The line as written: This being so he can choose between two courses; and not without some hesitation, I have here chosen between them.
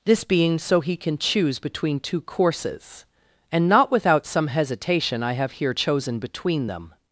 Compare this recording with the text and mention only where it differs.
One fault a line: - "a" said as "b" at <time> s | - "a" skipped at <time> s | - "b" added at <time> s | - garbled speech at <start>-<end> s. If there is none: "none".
none